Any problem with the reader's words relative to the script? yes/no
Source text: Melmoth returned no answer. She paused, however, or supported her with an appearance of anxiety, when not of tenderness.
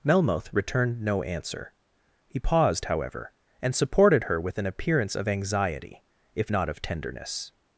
yes